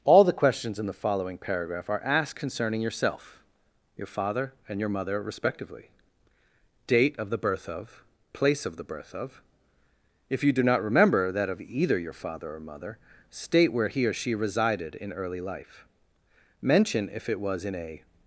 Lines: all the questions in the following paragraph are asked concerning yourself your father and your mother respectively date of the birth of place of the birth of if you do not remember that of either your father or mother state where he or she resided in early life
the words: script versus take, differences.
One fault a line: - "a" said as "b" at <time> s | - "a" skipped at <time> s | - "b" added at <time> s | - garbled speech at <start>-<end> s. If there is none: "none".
- "mention if it was in a" added at 16.6 s